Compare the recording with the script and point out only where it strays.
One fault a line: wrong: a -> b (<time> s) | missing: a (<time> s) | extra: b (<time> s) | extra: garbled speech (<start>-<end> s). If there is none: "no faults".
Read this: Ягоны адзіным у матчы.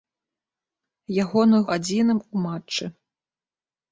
no faults